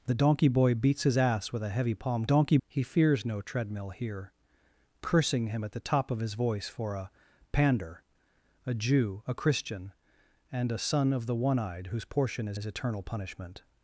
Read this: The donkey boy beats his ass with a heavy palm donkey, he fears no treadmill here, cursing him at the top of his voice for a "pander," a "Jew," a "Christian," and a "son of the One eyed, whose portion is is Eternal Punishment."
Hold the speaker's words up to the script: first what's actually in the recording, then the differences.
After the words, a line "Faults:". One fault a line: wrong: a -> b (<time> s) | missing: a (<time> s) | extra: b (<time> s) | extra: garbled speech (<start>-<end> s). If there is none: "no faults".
The donkey boy beats his ass with a heavy palm donkey, he fears no treadmill here, cursing him at the top of his voice for a "pander," a "Jew," a "Christian," and a "son of the One eyed, whose portion is is Eternal Punishment."
Faults:
no faults